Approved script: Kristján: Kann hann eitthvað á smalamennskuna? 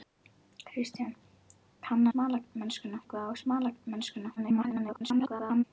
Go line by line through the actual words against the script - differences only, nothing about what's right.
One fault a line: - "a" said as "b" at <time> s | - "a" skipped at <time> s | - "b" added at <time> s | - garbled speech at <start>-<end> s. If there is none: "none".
- "hann" said as "smalamennskuna" at 2.1 s
- garbled speech at 4.4-5.6 s